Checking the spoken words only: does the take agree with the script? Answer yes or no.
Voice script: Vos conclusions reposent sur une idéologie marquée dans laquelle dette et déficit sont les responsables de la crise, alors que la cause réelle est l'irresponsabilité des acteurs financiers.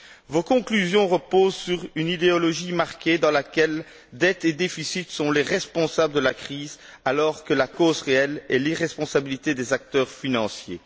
yes